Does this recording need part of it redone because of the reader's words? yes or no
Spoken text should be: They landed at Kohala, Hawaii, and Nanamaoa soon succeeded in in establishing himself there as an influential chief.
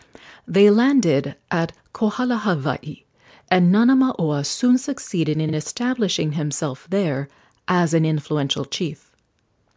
no